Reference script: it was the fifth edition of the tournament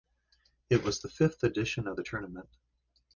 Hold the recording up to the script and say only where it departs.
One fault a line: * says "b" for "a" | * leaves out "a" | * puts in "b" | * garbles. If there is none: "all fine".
all fine